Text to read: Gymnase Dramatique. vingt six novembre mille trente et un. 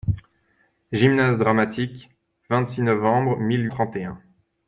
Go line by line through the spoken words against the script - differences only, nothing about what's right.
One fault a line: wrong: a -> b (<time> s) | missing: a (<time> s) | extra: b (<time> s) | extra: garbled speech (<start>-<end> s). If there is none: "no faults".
no faults